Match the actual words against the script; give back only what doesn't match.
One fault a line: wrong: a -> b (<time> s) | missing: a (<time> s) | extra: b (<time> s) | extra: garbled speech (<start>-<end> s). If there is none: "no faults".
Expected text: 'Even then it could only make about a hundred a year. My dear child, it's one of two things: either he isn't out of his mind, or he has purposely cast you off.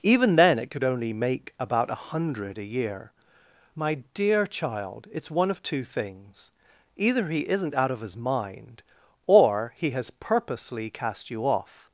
no faults